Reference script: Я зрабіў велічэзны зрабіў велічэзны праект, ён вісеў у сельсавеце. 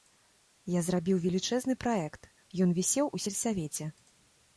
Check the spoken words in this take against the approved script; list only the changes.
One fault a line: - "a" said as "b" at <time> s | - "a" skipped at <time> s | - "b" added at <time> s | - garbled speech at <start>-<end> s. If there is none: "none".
- "зрабіў велічэзны" skipped at 1.8 s